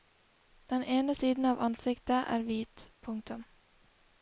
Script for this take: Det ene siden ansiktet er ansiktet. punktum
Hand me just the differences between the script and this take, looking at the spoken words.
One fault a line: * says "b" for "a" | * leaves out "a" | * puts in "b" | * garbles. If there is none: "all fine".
* says "Den" for "Det"
* puts in "av"
* says "hvit" for "ansiktet"